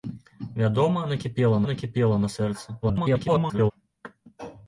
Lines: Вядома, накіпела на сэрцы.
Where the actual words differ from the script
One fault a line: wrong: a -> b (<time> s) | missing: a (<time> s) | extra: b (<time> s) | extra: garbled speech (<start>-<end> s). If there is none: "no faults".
extra: накіпела (1.7 s)
extra: garbled speech (2.8-3.7 s)